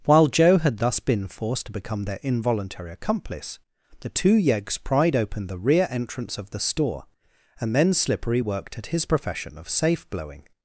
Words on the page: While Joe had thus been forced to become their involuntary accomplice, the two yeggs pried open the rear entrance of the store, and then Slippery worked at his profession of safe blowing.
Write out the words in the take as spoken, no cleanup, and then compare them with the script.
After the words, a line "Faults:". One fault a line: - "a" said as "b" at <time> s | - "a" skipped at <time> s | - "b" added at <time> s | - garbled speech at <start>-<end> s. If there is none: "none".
While Joe had thus been forced to become their involuntary accomplice, the two yeggs pried open the rear entrance of the store, and then Slippery worked at his profession of safe blowing.
Faults:
none